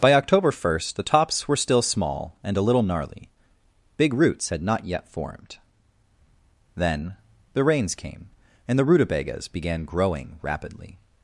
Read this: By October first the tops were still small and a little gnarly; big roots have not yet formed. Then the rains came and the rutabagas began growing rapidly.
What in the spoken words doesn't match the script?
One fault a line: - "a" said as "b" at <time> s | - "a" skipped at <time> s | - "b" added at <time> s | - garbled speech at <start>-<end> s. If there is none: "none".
- "have" said as "had" at 4.5 s